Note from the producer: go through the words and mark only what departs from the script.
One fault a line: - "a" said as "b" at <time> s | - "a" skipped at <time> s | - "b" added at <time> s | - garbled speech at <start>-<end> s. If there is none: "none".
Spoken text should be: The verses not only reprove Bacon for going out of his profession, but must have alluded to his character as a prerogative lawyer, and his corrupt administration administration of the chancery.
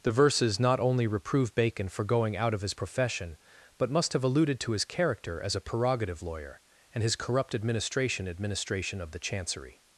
none